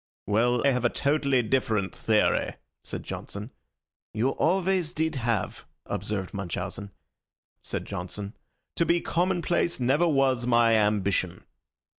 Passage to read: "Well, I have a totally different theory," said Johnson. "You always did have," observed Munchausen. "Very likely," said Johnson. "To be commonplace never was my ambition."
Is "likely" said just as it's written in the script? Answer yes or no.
no